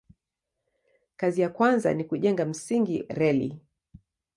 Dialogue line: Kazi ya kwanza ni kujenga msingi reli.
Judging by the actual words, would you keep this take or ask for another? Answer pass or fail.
pass